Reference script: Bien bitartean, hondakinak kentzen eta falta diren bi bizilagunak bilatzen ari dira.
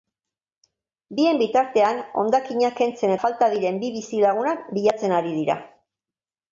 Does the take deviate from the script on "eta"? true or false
true